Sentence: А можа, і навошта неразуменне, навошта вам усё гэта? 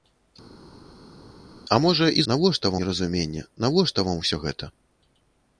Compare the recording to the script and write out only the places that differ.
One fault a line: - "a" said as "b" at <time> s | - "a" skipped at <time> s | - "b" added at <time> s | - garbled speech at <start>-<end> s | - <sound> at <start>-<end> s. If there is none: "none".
none